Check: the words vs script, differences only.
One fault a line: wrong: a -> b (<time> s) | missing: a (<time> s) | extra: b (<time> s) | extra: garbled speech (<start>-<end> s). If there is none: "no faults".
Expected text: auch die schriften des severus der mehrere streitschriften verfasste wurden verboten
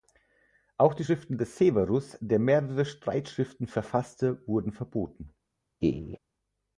no faults